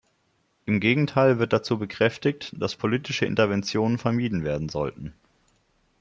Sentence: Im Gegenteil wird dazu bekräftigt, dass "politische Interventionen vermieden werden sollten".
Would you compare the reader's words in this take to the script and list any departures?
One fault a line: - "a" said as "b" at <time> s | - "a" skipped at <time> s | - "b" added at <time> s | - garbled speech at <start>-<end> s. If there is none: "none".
none